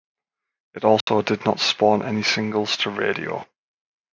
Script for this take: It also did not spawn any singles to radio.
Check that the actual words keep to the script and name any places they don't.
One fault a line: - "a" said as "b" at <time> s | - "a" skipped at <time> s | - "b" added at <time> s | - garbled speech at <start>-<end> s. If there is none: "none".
none